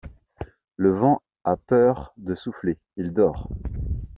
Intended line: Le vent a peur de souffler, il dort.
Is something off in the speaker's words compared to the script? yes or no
no